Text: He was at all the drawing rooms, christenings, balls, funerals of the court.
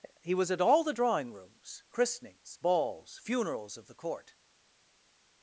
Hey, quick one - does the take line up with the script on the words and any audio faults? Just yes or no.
yes